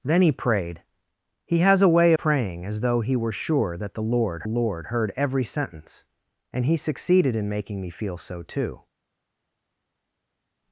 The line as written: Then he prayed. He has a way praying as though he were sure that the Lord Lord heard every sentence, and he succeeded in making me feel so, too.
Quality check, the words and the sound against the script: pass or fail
pass